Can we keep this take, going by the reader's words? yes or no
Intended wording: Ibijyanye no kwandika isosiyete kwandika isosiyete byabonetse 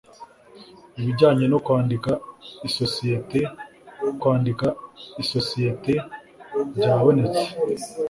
yes